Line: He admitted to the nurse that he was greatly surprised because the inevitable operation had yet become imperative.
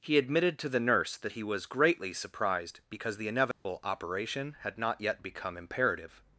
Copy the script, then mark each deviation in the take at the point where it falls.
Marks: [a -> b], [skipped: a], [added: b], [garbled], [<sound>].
He admitted to the nurse that he was greatly surprised because the inevitable [dropout] operation had [added: not] yet become imperative.